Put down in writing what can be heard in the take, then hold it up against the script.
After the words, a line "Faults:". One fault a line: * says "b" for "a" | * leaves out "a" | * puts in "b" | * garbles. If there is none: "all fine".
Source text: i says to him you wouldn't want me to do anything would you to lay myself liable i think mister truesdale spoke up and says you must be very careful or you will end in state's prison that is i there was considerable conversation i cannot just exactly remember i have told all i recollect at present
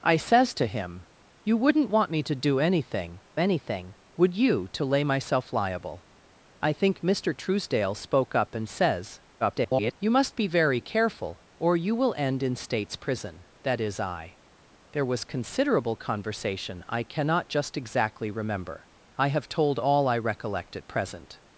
i says to him you wouldn't want me to do anything anything would you to lay myself liable i think mister truesdale spoke up and says [garbled] you must be very careful or you will end in state's prison that is i there was considerable conversation i cannot just exactly remember i have told all i recollect at present
Faults:
* puts in "anything"
* garbles